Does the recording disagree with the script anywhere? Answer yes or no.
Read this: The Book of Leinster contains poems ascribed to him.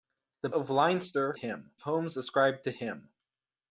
yes